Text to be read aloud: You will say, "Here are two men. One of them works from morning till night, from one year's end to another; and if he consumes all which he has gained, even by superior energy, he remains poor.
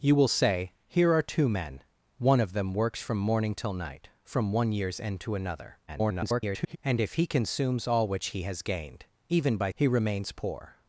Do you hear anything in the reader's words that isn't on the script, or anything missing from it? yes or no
yes